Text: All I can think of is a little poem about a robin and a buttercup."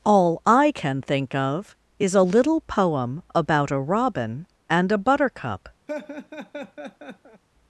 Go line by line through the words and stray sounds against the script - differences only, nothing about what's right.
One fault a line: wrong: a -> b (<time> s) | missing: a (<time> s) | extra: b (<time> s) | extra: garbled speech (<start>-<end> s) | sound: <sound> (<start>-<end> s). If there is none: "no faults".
sound: laugh (5.9-7.4 s)